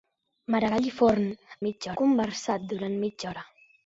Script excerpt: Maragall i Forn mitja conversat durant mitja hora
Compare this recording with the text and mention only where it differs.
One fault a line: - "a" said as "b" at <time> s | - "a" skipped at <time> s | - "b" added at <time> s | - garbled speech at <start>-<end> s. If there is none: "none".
none